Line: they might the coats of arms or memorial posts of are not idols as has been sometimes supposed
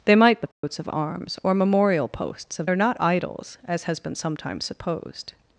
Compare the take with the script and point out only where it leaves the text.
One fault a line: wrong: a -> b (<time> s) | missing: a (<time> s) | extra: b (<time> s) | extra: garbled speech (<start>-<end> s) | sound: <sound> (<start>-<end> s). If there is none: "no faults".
sound: dropout (0.5-0.6 s)